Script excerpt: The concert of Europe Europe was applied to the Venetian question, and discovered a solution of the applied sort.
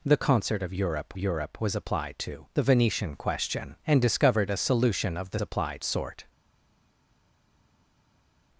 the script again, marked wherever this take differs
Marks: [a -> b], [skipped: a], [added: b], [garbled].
The concert of Europe Europe was applied to the Venetian question, and discovered a solution of the applied sort.